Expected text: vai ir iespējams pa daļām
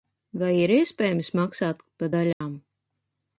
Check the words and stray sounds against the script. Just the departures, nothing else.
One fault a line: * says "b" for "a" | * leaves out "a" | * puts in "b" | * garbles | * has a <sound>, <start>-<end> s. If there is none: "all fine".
* puts in "maksāt"
* has a dropout, 2.3-2.4 s